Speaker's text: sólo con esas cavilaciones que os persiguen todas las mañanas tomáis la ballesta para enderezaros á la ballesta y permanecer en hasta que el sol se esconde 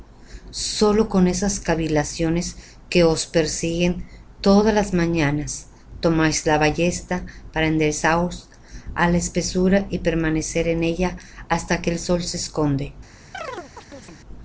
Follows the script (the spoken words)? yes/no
no